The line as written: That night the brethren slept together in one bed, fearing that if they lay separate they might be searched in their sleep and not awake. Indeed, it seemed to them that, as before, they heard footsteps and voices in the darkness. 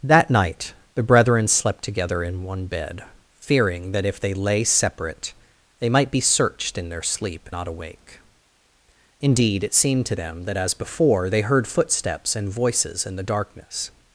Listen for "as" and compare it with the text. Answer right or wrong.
right